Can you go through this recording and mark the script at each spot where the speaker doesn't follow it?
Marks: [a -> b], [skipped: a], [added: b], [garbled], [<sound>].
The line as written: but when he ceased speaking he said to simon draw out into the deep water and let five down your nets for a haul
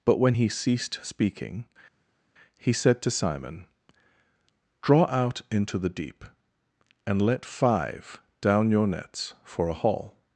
but when he ceased speaking he said to simon draw out into the deep [skipped: water] and let five down your nets for a haul